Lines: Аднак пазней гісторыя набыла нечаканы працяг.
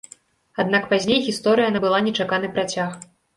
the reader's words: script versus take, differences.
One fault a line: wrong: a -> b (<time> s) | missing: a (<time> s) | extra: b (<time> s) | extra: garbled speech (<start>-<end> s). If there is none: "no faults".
no faults